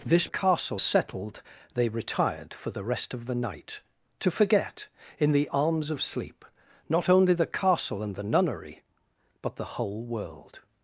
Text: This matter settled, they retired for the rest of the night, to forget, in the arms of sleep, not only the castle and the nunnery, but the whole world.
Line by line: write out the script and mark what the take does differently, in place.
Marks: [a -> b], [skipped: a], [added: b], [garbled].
This [matter -> castle] settled, they retired for the rest of the night, to forget, in the arms of sleep, not only the castle and the nunnery, but the whole world.